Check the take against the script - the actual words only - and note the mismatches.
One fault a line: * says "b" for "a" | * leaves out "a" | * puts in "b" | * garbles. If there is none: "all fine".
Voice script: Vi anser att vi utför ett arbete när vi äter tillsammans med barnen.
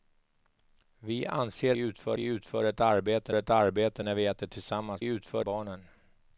* says "utför" for "att"
* puts in "ett arbete"
* says "utför" for "med"